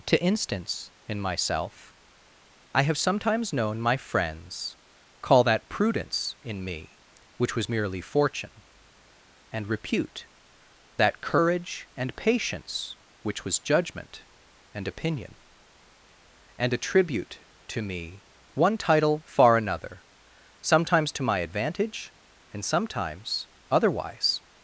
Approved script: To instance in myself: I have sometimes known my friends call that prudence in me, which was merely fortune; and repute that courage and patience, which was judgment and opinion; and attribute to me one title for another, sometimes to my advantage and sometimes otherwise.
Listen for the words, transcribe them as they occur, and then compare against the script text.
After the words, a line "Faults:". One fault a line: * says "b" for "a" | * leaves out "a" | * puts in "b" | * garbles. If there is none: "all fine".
To instance in myself: I have sometimes known my friends call that prudence in me, which was merely fortune; and repute that courage and patience, which was judgment and opinion; and attribute to me one title far another, sometimes to my advantage and sometimes otherwise.
Faults:
* says "far" for "for"